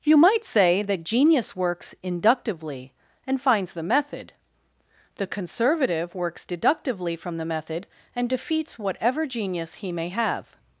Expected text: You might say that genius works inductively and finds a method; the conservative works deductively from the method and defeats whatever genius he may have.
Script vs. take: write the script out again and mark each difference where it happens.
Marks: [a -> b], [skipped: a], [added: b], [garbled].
You might say that genius works inductively and finds [a -> the] method; the conservative works deductively from the method and defeats whatever genius he may have.